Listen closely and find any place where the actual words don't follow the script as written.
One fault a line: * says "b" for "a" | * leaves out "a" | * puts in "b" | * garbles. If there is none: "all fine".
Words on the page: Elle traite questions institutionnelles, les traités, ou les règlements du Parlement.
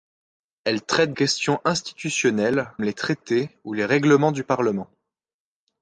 all fine